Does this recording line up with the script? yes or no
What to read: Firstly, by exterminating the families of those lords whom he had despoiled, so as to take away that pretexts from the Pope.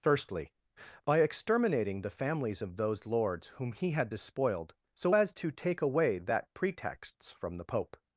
yes